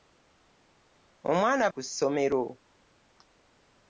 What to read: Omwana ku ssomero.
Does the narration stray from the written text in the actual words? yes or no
no